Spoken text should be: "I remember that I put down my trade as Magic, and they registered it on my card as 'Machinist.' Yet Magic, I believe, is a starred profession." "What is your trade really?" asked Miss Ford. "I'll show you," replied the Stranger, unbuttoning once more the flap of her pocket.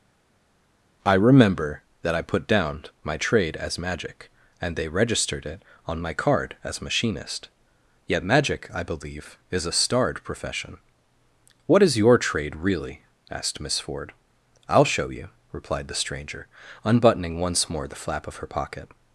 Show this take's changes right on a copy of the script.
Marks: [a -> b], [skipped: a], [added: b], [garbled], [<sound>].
"I remember that I put down my trade as Magic, and they registered it on my card as 'Machinist.' Yet Magic, I believe, is a starred profession." "What is your trade really?" asked Miss Ford. "I'll show you," replied the Stranger, unbuttoning once more the flap of her pocket.